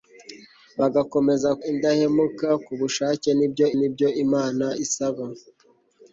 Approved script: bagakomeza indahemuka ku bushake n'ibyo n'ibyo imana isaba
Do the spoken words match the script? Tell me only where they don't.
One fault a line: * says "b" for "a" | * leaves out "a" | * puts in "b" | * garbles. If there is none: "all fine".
all fine